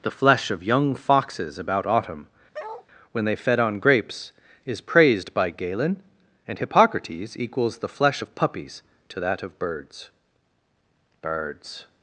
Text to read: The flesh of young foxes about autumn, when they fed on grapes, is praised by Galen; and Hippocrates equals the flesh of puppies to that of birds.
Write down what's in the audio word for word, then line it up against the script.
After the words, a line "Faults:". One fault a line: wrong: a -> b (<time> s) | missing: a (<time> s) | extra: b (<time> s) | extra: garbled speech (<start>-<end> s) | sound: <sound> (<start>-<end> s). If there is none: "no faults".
The flesh of young foxes about autumn, when they fed on grapes, is praised by Galen; and Hippocrates equals the flesh of puppies to that of birds birds.
Faults:
sound: bark (2.5-2.9 s)
extra: birds (11.2 s)